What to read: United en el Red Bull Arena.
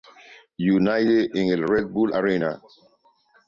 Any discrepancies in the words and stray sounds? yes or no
no